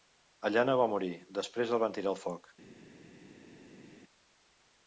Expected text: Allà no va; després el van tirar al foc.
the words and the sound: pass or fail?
fail